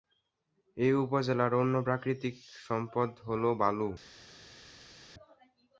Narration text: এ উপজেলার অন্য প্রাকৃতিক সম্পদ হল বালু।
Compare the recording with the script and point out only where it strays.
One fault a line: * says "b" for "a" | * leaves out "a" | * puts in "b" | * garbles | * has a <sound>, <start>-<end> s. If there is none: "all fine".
all fine